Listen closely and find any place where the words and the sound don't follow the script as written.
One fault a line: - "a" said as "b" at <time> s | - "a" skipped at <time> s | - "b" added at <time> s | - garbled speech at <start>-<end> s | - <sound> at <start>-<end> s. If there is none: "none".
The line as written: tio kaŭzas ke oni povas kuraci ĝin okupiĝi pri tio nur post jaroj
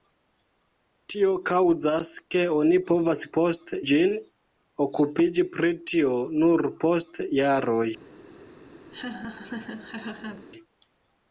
- "kuraci" said as "post" at 3.4 s
- laugh at 8.9-10.5 s